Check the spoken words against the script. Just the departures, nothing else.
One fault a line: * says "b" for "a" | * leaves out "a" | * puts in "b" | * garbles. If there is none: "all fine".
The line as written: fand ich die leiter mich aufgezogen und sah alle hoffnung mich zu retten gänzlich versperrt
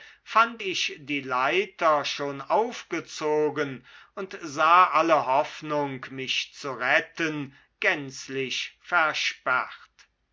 * says "schon" for "mich"